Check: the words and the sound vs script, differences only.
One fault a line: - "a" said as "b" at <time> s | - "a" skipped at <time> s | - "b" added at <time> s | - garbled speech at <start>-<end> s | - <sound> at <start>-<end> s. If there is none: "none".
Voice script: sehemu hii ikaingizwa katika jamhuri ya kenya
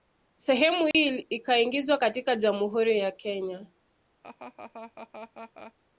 - dropout at 0.9-0.9 s
- laugh at 4.2-5.7 s